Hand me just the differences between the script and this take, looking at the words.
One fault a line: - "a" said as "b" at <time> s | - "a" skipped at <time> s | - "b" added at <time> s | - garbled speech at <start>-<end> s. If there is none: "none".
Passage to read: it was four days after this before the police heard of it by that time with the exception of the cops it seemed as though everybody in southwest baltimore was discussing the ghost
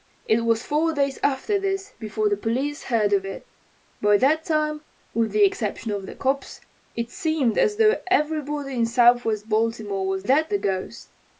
- "discussing" said as "that" at 10.2 s